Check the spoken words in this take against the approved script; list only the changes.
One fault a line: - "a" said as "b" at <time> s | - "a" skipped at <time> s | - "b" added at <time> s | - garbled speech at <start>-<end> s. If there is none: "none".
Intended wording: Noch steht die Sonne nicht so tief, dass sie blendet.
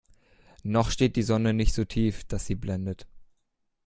none